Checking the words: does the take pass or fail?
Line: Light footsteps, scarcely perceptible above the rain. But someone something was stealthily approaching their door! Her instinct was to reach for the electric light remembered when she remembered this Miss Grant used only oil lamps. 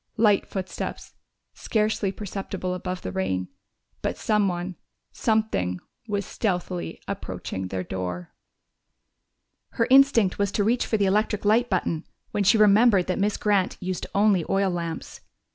fail